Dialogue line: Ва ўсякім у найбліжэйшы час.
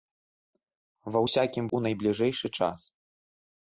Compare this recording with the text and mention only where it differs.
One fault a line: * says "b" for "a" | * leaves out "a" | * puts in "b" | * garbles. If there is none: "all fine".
all fine